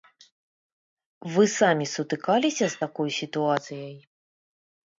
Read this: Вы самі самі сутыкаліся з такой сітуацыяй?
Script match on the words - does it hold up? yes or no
no